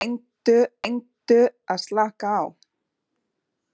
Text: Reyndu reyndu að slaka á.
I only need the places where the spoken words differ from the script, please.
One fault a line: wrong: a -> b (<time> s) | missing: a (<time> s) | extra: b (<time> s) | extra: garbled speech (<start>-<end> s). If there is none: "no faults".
no faults